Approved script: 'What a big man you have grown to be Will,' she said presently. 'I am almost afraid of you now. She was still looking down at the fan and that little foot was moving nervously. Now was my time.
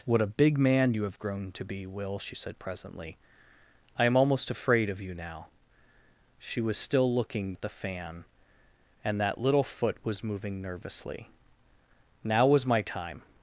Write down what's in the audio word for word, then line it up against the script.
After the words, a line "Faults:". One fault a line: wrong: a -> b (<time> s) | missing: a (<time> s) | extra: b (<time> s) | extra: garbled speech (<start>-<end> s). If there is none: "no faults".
'What a big man you have grown to be Will,' she said presently. 'I am almost afraid of you now. She was still looking at the fan and that little foot was moving nervously. Now was my time.
Faults:
missing: down (7.5 s)